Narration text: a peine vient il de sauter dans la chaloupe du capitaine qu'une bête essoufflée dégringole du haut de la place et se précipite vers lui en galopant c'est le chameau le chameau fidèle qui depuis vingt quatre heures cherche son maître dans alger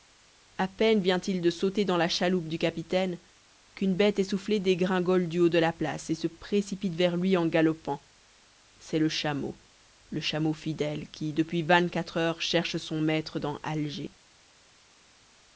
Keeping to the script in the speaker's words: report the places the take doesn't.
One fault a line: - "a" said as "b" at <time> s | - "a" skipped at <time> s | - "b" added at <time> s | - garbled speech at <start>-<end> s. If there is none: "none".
none